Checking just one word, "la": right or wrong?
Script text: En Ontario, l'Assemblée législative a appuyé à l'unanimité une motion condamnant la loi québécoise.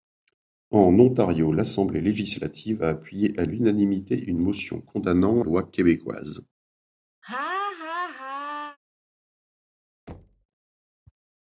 wrong